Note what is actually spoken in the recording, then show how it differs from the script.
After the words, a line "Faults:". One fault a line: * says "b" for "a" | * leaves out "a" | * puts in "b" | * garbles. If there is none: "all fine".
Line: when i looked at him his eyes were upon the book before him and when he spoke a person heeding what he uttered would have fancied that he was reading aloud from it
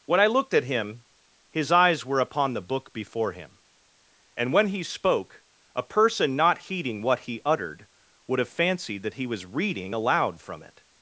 when i looked at him his eyes were upon the book before him and when he spoke a person not heeding what he uttered would have fancied that he was reading aloud from it
Faults:
* puts in "not"